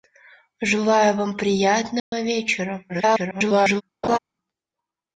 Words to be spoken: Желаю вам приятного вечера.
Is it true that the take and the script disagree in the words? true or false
true